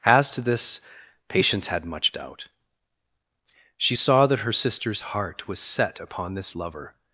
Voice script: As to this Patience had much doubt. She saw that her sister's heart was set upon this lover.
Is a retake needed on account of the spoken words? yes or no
no